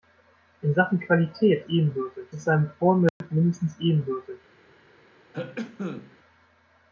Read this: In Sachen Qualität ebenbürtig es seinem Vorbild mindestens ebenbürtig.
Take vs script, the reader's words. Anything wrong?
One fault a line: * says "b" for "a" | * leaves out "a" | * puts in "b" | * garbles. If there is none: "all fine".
all fine